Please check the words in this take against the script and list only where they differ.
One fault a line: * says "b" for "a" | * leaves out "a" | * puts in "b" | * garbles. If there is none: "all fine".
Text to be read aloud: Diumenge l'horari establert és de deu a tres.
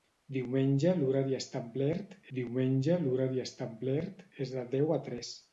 * puts in "diumenge l'horari establert"